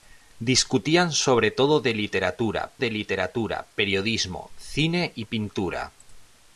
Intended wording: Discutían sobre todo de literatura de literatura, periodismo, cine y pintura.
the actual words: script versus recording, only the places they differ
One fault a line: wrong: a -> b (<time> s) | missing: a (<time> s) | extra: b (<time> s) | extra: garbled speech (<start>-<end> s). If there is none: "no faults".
no faults